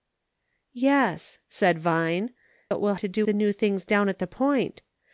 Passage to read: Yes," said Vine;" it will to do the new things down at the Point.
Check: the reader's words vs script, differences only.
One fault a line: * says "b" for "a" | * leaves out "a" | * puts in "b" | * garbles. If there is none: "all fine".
all fine